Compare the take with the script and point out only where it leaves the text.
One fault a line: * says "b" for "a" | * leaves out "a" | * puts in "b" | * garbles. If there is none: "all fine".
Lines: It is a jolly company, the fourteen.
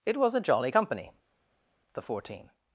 * says "was" for "is"